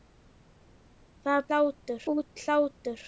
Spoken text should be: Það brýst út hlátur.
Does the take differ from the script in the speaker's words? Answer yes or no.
yes